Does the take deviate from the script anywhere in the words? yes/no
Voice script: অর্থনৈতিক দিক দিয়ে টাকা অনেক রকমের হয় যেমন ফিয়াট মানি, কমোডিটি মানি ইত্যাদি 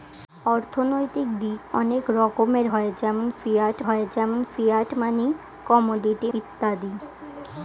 yes